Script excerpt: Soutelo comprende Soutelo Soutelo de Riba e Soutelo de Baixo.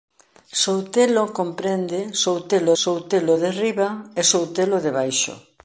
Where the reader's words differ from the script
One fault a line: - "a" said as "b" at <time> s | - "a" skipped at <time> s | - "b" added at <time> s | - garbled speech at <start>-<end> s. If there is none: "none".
none